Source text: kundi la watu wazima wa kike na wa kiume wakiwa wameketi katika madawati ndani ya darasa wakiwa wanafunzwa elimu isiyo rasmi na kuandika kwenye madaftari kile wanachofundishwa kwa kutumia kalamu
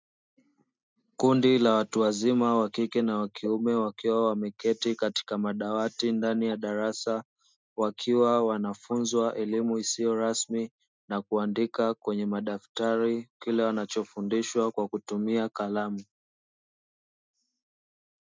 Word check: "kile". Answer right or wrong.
right